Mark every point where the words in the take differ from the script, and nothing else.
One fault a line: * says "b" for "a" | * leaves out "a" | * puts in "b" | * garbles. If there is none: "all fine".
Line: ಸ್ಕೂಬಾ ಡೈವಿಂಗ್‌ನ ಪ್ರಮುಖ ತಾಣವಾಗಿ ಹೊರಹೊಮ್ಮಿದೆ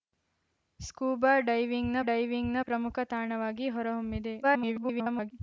* puts in "ಡೈವಿಂಗ್‌ನ"
* garbles